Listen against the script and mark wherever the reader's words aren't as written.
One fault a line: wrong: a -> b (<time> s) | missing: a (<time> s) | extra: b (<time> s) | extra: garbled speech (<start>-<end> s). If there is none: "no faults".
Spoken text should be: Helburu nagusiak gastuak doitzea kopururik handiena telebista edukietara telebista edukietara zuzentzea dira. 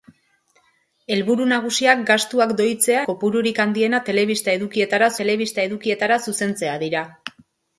no faults